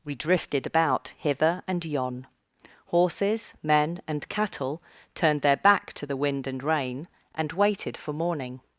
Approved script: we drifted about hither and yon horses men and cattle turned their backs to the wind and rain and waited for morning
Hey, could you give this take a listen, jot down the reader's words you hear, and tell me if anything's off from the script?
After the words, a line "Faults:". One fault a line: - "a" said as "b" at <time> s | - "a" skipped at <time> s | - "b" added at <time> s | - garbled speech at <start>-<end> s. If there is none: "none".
we drifted about hither and yon horses men and cattle turned their back to the wind and rain and waited for morning
Faults:
- "backs" said as "back" at 5.6 s